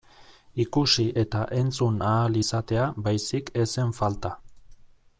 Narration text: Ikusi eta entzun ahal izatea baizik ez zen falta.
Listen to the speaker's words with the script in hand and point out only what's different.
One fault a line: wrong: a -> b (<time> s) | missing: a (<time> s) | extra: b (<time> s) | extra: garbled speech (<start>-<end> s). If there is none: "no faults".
no faults